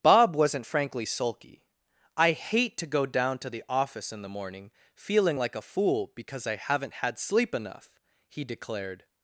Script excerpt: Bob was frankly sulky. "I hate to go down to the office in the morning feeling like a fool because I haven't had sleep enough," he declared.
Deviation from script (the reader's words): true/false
true